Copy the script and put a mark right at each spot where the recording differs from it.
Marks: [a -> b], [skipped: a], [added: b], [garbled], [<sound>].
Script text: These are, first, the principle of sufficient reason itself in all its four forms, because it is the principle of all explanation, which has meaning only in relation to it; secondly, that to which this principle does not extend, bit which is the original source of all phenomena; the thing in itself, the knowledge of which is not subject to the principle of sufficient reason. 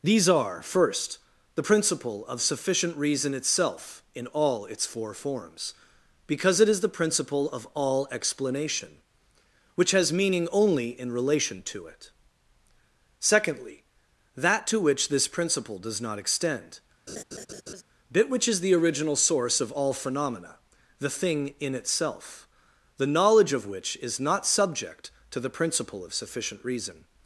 These are, first, the principle of sufficient reason itself in all its four forms, because it is the principle of all explanation, which has meaning only in relation to it; secondly, that to which this principle does not extend, [laugh] bit which is the original source of all phenomena; the thing in itself, the knowledge of which is not subject to the principle of sufficient reason.